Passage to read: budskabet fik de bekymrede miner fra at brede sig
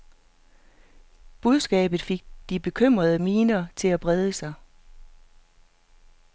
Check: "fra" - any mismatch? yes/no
yes